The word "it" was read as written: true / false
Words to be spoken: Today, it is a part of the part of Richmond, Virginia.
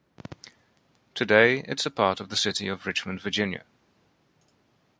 true